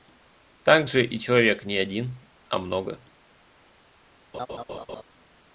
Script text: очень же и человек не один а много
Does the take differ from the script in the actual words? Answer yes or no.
yes